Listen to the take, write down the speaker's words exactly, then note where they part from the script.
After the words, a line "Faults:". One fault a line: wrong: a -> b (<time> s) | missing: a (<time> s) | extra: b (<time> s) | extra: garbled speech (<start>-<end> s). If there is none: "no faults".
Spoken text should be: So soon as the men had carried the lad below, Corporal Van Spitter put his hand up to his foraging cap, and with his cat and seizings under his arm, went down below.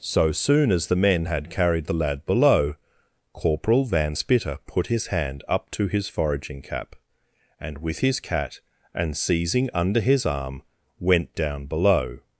So soon as the men had carried the lad below, Corporal Van Spitter put his hand up to his foraging cap, and with his cat and seizing under his arm, went down below.
Faults:
wrong: seizings -> seizing (9.2 s)